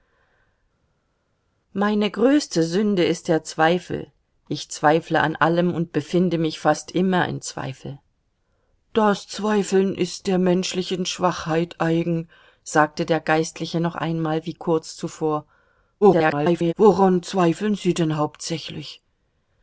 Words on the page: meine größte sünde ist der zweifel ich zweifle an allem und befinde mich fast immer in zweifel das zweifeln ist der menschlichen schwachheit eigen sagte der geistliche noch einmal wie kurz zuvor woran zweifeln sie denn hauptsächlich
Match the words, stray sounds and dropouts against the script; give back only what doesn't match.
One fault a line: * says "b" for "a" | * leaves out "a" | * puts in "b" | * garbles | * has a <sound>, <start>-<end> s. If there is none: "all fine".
* garbles